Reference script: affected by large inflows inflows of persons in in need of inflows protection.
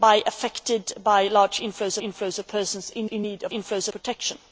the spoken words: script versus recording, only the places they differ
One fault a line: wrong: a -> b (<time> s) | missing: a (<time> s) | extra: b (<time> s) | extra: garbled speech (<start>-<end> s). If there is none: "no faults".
no faults